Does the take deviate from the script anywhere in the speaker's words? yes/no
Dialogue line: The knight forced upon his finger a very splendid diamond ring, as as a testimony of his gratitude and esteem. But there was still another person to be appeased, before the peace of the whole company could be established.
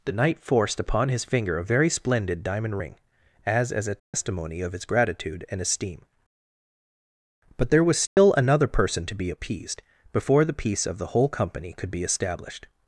no